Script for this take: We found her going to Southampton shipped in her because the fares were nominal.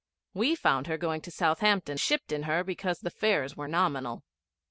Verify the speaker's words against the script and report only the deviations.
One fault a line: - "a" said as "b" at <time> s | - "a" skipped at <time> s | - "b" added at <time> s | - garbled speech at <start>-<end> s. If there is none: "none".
none